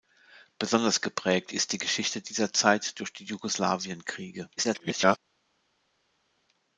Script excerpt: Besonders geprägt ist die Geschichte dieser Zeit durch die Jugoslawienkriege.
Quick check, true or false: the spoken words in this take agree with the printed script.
false